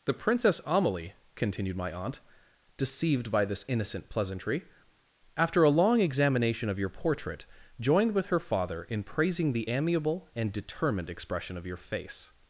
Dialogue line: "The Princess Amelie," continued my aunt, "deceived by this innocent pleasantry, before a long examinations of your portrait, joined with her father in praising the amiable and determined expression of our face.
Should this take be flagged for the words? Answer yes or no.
yes